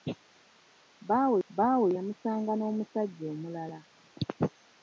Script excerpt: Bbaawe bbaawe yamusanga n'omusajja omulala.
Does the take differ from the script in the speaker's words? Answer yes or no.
no